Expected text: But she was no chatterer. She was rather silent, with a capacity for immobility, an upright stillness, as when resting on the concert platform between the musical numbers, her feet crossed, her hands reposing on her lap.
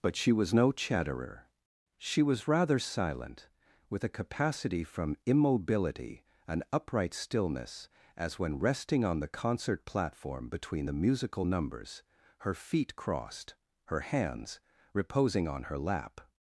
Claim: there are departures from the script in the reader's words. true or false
true